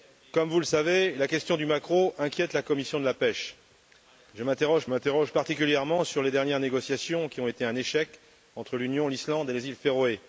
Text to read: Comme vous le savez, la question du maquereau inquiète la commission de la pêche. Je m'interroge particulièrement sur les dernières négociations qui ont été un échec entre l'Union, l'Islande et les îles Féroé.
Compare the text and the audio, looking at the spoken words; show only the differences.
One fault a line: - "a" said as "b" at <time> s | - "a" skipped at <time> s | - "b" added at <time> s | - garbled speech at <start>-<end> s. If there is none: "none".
- "m'interroge" added at 4.9 s